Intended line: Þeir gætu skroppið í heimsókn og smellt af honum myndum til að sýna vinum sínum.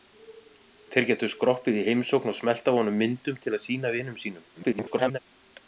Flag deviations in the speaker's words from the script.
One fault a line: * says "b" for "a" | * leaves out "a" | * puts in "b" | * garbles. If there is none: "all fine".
* garbles